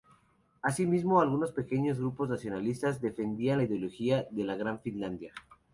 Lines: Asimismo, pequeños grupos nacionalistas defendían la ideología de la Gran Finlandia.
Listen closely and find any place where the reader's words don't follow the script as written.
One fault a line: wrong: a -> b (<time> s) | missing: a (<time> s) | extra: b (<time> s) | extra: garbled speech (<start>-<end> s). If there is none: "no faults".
extra: algunos (1.2 s)